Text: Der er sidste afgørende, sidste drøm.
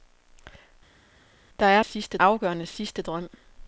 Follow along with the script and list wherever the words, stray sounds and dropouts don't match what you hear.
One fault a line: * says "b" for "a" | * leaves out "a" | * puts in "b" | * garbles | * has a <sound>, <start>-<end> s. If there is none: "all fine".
all fine